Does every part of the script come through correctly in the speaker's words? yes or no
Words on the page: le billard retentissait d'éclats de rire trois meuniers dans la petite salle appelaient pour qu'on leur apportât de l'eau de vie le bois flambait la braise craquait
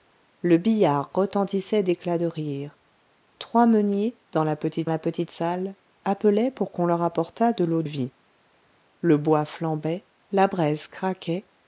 no